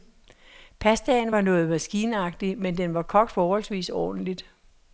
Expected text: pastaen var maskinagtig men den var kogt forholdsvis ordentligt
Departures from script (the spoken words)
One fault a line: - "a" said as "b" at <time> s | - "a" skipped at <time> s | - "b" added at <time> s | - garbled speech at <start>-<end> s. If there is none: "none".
- "noget" added at 1.4 s